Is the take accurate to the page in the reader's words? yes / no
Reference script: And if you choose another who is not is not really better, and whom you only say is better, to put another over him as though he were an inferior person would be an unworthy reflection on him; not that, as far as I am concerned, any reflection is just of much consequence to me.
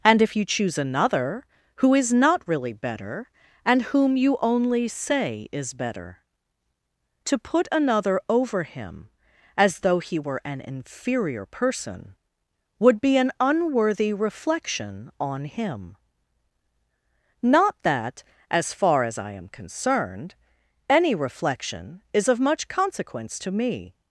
no